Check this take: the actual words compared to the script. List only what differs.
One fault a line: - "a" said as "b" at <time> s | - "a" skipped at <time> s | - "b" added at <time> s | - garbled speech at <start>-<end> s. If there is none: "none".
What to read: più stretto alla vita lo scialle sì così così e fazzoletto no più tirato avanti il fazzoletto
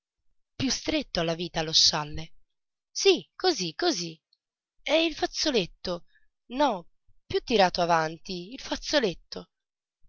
- "il" added at 5.0 s